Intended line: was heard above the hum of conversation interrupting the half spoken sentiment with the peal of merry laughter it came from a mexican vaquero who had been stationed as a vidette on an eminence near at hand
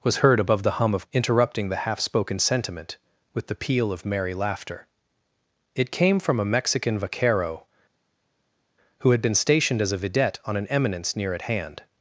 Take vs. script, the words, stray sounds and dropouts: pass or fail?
fail